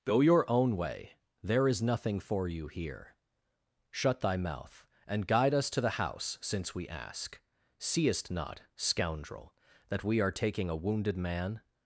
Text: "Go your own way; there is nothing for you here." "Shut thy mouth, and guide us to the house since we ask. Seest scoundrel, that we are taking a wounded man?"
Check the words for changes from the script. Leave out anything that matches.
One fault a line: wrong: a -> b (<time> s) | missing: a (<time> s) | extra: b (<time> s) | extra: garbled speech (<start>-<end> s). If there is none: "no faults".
extra: not (8.3 s)